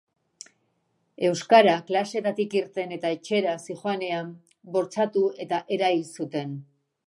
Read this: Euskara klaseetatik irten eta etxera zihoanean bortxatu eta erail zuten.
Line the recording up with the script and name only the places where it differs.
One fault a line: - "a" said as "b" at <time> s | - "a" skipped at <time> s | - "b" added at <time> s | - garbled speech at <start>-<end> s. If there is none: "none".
none